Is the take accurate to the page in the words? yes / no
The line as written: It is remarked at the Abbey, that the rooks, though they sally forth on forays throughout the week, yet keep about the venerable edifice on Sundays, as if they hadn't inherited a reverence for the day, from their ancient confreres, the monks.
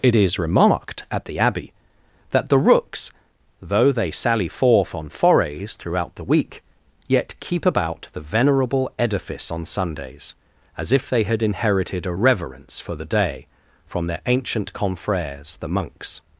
no